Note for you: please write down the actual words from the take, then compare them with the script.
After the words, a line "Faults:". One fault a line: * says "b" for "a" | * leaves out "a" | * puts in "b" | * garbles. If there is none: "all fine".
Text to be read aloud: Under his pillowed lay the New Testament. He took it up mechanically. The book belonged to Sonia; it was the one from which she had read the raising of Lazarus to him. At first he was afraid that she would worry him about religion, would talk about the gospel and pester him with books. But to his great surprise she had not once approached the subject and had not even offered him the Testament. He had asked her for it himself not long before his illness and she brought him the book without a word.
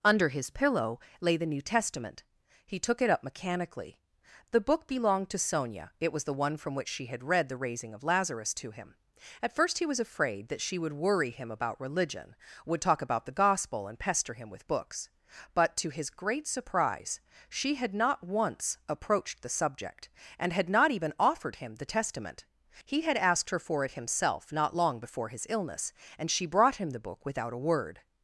Under his pillow lay the New Testament. He took it up mechanically. The book belonged to Sonia; it was the one from which she had read the raising of Lazarus to him. At first he was afraid that she would worry him about religion, would talk about the gospel and pester him with books. But to his great surprise she had not once approached the subject and had not even offered him the Testament. He had asked her for it himself not long before his illness and she brought him the book without a word.
Faults:
* says "pillow" for "pillowed"